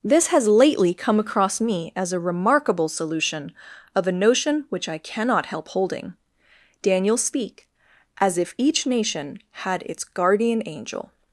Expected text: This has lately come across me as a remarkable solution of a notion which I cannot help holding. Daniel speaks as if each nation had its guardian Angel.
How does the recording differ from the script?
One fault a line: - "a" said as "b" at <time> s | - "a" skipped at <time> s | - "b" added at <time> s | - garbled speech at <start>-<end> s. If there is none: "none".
- "speaks" said as "speak" at 7.2 s